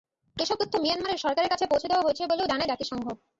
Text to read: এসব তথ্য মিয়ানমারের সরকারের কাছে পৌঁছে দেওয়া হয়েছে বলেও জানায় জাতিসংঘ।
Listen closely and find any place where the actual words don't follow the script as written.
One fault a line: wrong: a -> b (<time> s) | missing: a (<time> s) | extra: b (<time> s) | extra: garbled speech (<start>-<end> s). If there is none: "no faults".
no faults